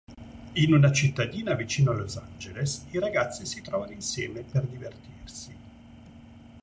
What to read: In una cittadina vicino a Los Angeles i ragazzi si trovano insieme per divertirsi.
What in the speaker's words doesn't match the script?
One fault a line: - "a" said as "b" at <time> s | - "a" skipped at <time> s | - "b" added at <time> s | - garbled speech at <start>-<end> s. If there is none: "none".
none